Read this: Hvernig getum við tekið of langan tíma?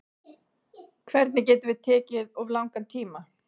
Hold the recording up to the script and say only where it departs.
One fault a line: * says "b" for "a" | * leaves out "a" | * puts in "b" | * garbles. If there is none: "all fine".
all fine